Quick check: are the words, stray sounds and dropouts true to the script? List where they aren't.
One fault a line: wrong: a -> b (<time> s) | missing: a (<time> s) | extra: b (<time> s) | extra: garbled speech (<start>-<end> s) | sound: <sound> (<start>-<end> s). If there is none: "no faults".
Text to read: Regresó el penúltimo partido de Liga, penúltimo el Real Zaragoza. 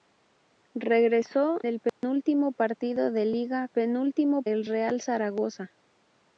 sound: dropout (1.9-2.0 s)